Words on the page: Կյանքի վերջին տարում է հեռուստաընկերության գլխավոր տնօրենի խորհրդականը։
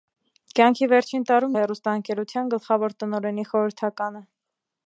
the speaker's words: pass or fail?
pass